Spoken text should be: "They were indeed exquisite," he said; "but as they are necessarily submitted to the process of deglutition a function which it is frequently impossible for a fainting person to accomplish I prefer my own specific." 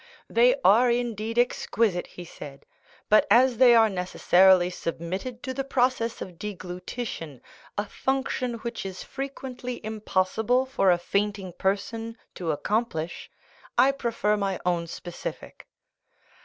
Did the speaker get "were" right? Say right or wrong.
wrong